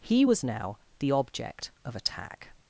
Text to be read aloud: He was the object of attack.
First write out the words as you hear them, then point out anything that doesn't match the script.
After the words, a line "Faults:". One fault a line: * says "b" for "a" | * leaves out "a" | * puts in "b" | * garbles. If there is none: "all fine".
He was now the object of attack.
Faults:
* puts in "now"